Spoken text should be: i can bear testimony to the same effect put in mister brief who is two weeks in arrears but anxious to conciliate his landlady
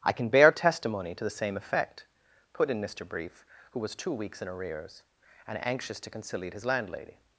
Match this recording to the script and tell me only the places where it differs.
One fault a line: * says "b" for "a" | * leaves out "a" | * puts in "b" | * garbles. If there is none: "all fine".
* says "was" for "is"
* says "and" for "but"